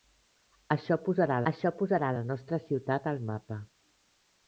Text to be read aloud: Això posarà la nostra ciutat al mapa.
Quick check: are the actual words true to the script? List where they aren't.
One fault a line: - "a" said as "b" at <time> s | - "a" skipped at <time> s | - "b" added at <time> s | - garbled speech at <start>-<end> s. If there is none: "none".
- "això posarà" added at 1.5 s